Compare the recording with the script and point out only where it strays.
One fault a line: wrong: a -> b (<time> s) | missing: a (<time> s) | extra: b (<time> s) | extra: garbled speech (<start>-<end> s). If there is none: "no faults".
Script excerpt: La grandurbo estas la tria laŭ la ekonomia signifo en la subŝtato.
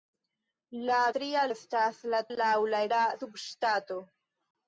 wrong: grandurbo -> tria (1.2 s)
missing: tria (2.2 s)
missing: ekonomia signifo en (2.8 s)